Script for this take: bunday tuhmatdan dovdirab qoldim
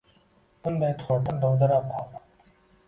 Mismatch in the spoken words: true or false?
false